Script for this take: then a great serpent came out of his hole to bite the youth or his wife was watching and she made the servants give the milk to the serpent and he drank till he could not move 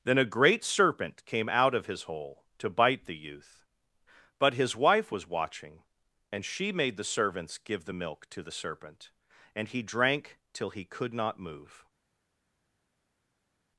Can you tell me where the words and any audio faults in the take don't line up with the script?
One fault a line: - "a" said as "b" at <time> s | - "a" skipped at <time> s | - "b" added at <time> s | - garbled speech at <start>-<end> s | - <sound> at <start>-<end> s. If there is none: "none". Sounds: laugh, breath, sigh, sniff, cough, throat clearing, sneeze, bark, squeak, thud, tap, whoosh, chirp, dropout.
- "or" said as "but" at 4.4 s